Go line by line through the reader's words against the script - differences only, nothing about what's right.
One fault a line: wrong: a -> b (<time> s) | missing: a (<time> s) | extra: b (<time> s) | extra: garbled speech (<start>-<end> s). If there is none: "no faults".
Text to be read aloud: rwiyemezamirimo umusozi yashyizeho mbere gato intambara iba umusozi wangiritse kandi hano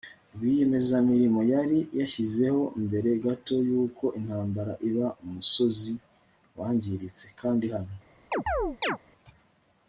wrong: umusozi -> yari (1.5 s)
extra: yuko (3.7 s)